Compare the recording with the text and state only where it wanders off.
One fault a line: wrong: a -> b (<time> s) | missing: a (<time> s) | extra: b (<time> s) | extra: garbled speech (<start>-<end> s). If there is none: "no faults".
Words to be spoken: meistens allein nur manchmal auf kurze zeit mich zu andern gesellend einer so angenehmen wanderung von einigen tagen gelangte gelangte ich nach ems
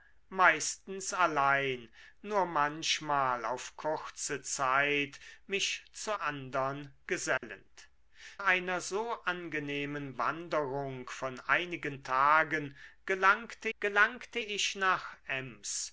no faults